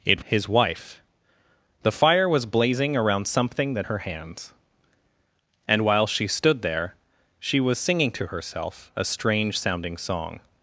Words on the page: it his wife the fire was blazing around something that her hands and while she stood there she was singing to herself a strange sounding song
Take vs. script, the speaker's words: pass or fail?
pass